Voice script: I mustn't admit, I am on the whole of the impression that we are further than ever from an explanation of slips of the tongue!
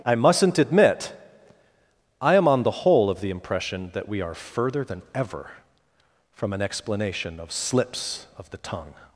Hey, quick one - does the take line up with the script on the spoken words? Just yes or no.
yes